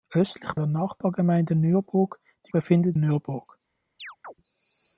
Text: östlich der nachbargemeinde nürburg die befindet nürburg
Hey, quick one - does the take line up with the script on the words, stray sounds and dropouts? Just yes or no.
no